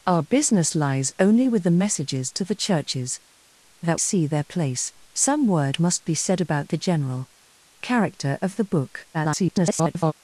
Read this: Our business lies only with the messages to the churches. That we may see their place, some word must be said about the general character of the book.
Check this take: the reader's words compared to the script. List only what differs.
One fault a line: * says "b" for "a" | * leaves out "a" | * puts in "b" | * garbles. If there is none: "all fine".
* leaves out "we may"
* garbles